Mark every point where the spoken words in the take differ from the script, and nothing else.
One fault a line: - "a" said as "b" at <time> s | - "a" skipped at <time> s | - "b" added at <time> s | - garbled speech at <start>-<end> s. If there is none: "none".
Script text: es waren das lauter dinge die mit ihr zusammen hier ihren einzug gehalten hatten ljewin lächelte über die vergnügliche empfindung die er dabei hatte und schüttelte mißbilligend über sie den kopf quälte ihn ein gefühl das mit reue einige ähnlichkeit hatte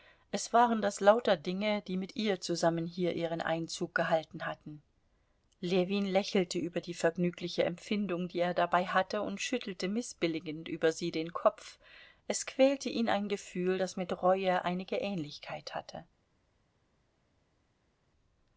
- "es" added at 12.3 s